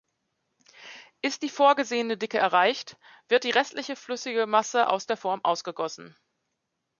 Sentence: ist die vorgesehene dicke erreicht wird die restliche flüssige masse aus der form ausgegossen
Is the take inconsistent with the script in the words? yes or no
no